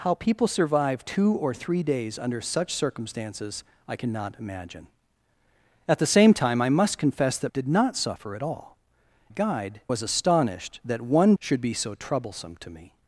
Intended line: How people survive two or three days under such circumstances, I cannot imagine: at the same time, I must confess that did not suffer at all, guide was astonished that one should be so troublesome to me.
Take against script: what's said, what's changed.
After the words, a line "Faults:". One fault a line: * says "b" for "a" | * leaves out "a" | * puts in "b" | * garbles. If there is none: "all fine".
How people survive two or three days under such circumstances, I cannot imagine: at the same time, I must confess that did not suffer at all, guide was astonished that one should be so troublesome to me.
Faults:
all fine